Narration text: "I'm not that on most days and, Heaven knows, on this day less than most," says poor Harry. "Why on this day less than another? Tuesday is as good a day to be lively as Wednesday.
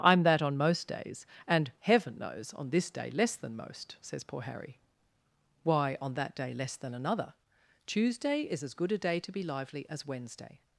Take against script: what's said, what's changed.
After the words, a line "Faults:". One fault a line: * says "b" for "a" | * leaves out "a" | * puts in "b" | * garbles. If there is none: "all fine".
"I'm that on most days and, Heaven knows, on this day less than most," says poor Harry. "Why on that day less than another? Tuesday is as good a day to be lively as Wednesday.
Faults:
* leaves out "not"
* says "that" for "this"